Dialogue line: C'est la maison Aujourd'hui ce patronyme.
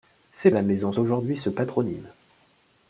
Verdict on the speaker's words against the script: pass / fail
pass